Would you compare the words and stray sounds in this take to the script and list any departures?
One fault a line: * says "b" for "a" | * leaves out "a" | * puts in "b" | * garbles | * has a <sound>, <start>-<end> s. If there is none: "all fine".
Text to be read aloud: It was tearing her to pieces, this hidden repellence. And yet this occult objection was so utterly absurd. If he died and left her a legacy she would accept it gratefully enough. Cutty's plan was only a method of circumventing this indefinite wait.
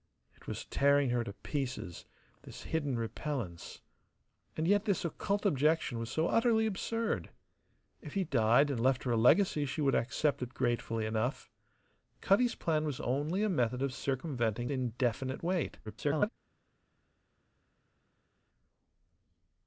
* leaves out "this"
* garbles